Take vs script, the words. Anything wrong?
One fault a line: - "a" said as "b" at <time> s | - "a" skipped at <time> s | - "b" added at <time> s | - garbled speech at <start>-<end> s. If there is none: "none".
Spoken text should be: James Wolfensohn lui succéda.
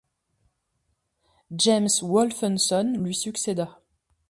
none